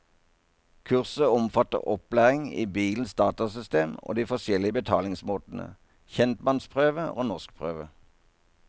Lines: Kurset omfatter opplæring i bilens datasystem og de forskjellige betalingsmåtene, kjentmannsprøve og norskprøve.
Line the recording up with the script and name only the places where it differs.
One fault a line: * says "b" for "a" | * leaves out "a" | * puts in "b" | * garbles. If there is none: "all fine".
all fine